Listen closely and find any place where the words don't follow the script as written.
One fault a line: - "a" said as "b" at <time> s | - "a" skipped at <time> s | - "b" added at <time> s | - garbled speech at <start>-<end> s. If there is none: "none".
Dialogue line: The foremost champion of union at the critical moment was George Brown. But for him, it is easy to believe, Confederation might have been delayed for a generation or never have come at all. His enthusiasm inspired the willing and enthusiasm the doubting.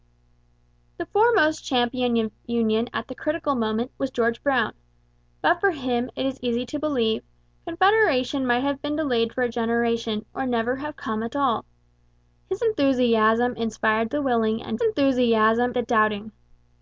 none